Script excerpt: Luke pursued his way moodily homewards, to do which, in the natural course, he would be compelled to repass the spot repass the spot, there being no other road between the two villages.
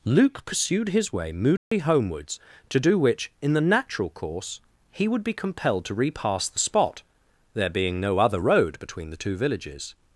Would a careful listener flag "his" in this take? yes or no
no